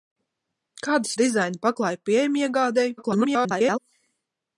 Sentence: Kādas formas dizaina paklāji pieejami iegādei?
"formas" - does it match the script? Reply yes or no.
no